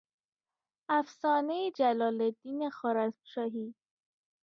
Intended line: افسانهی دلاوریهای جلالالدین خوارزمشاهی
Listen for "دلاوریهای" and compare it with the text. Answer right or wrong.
wrong